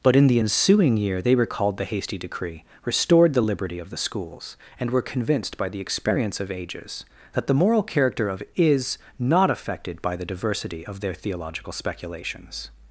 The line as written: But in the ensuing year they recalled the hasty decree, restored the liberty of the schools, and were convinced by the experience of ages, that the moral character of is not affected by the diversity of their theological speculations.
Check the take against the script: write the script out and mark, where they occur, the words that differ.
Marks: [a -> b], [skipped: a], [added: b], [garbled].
But in the ensuing year they recalled the hasty decree, restored the liberty of the schools, and were convinced by the experience of ages, that the moral character of is not affected by the diversity of their theological speculations.